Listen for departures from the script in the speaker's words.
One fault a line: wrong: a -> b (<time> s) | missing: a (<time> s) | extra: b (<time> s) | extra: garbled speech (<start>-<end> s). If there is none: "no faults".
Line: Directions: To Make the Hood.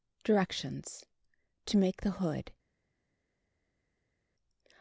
no faults